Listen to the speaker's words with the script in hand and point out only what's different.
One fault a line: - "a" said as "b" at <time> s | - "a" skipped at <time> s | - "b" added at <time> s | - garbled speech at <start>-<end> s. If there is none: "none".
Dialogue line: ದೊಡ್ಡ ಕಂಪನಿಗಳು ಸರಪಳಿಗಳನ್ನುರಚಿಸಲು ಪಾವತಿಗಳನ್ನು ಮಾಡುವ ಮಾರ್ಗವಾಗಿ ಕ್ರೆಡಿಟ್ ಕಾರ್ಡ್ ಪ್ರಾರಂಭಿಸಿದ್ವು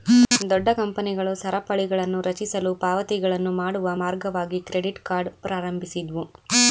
none